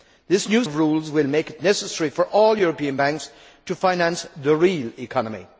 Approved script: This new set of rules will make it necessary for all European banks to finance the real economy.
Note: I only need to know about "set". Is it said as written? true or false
false